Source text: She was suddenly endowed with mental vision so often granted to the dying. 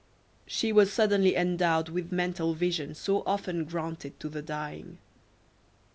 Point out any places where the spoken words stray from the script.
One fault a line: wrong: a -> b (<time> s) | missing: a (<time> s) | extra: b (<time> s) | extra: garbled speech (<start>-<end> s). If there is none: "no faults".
no faults